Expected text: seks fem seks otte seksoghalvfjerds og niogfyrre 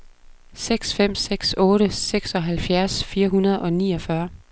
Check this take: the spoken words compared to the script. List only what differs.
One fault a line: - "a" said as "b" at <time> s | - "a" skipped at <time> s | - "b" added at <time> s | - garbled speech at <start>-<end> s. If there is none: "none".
- "fire hundrede" added at 3.0 s